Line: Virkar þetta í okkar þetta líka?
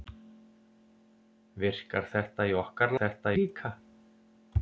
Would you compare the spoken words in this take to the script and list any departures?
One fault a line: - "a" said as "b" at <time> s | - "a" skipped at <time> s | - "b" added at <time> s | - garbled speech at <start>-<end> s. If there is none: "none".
none